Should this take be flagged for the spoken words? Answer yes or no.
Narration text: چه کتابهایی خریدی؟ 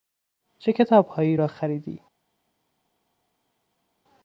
yes